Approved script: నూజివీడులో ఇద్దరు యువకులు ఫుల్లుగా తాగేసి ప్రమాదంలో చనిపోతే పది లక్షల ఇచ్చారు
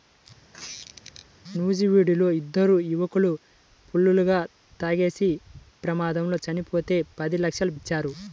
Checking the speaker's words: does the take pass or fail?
pass